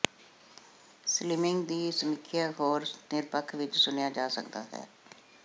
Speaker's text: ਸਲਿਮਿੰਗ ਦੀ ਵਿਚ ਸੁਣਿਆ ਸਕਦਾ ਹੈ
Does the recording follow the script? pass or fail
fail